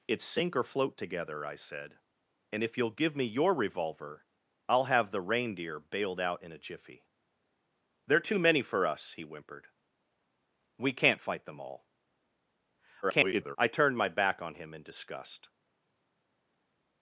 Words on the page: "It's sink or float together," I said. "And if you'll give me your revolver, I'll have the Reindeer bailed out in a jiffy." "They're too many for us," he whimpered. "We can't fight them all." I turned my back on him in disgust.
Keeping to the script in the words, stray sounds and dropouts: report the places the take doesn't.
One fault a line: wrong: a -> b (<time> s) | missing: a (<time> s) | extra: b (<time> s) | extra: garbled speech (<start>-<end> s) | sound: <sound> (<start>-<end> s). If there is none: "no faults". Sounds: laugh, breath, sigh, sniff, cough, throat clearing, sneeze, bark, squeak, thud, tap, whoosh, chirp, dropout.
extra: garbled speech (13.0-13.6 s)